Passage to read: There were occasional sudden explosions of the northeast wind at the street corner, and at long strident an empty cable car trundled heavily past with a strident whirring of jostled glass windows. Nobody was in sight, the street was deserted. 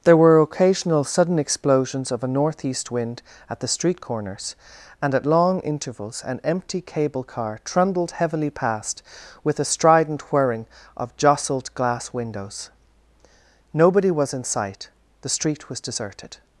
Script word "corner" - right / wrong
wrong